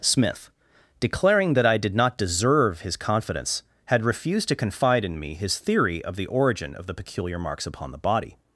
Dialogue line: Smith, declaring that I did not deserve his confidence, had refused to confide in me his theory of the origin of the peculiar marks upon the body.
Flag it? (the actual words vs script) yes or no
no